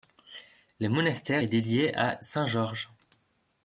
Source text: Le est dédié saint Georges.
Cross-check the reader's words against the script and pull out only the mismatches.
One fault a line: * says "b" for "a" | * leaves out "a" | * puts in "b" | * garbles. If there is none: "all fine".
* puts in "monastère"
* puts in "à"